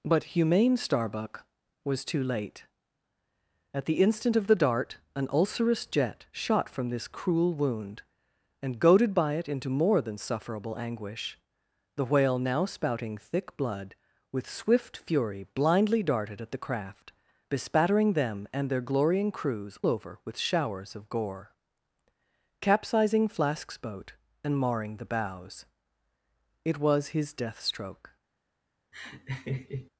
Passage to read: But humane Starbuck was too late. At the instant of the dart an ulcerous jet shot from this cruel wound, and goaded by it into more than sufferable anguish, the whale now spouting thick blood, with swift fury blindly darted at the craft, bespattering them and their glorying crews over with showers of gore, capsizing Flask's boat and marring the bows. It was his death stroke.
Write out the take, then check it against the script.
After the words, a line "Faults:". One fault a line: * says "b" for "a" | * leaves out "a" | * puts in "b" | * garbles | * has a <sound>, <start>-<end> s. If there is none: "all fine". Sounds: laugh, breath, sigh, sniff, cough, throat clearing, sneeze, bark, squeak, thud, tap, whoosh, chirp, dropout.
But humane Starbuck was too late. At the instant of the dart an ulcerous jet shot from this cruel wound, and goaded by it into more than sufferable anguish, the whale now spouting thick blood, with swift fury blindly darted at the craft, bespattering them and their glorying crews over with showers of gore, capsizing Flask's boat and marring the bows. It was his death stroke.
Faults:
* has a laugh, 28.9-29.9 s